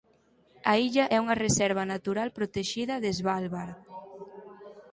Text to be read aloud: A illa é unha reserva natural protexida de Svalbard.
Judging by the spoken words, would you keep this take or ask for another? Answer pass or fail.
pass